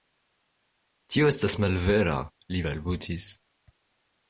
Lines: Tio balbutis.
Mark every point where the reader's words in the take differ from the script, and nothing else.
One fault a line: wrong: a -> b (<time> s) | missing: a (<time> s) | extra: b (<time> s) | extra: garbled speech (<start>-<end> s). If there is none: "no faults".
extra: estas malvera li (1.3 s)